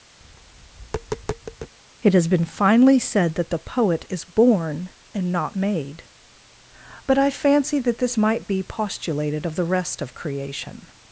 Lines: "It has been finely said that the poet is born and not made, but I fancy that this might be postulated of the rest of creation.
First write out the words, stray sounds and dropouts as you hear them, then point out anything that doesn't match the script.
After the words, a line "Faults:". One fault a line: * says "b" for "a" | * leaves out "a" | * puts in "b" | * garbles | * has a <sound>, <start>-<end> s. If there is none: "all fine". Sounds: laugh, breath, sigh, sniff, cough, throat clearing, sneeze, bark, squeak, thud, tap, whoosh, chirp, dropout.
"It has been finely said that the poet is born and not made, but I fancy that this might be postulated of the rest of creation.
Faults:
* has a tap, 0.2-1.7 s